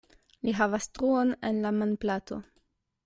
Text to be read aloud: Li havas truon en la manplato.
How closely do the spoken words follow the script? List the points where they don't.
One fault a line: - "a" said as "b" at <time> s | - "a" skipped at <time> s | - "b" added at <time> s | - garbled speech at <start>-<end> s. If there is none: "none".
none